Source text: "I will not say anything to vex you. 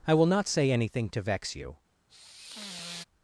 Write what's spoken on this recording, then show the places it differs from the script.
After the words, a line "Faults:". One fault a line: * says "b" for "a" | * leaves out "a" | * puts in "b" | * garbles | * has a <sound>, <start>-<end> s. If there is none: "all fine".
"I will not say anything to vex you.
Faults:
* has a sigh, 2.1-3.0 s